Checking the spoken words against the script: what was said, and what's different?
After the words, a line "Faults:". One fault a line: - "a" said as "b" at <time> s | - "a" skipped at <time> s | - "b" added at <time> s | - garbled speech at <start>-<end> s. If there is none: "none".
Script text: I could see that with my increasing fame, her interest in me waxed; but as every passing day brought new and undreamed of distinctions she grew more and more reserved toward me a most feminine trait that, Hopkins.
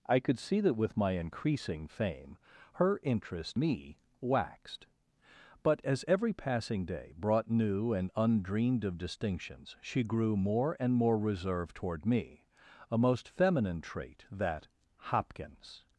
I could see that with my increasing fame, her interest me waxed; but as every passing day brought new and undreamed of distinctions she grew more and more reserved toward me a most feminine trait that, Hopkins.
Faults:
- "in" skipped at 3.6 s